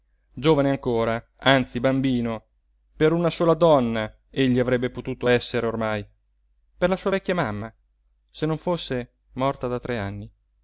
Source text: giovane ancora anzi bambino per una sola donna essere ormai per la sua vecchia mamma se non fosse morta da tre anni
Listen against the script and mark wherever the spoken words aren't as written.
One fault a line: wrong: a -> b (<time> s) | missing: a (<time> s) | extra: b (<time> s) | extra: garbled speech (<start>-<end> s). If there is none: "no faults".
extra: egli avrebbe potuto (4.3 s)